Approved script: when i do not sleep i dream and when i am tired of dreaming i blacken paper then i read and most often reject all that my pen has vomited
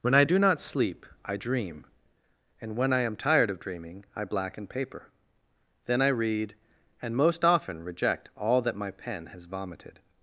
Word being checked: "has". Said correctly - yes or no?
yes